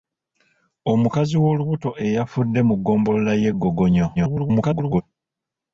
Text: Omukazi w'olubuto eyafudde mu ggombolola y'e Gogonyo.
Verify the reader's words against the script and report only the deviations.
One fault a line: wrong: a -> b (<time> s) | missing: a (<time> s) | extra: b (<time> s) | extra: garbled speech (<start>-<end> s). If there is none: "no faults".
extra: garbled speech (4.2-5.0 s)